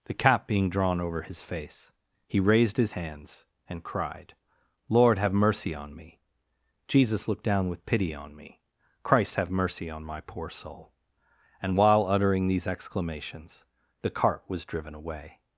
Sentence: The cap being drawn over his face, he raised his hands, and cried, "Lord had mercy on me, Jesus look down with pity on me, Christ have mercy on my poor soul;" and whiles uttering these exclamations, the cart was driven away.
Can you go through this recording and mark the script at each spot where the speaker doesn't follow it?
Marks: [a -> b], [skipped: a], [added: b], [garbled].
The cap being drawn over his face, he raised his hands, and cried, "Lord [had -> have] mercy on me, Jesus look down with pity on me, Christ have mercy on my poor soul;" and [whiles -> while] uttering these exclamations, the cart was driven away.